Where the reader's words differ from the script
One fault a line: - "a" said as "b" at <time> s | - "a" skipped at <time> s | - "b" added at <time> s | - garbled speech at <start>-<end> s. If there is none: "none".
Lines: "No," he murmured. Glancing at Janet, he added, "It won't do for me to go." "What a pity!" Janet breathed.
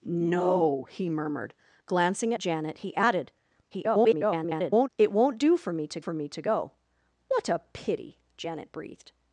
- "at" skipped at 2.3 s
- garbled speech at 3.7-4.9 s
- "for me to" added at 6.0 s